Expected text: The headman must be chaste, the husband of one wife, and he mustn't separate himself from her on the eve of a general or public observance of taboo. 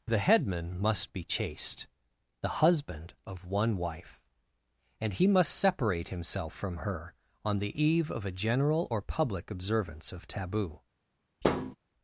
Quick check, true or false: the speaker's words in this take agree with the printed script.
false